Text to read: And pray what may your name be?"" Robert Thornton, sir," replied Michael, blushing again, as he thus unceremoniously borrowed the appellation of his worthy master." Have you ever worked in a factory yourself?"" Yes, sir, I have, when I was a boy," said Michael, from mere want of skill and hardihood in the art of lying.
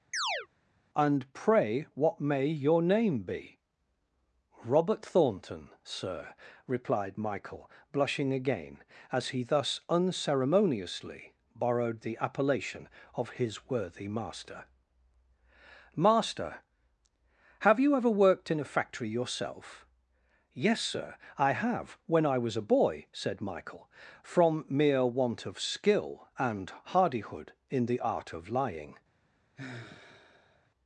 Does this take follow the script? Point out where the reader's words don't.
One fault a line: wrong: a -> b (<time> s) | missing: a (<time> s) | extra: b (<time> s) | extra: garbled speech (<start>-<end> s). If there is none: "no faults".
extra: master (15.9 s)